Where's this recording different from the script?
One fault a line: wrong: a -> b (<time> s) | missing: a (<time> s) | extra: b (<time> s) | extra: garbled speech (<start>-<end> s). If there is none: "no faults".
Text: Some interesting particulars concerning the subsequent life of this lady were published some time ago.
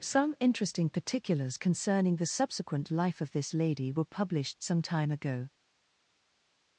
no faults